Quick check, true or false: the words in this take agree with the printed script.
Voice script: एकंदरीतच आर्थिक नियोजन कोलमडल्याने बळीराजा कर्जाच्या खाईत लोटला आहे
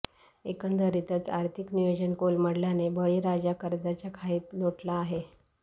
true